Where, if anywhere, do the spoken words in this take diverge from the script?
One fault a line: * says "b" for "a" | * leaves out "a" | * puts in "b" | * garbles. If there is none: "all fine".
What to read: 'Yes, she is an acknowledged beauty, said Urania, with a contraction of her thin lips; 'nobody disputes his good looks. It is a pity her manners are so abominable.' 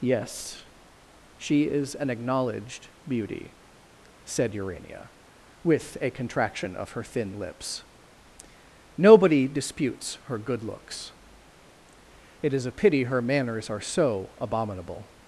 * says "her" for "his"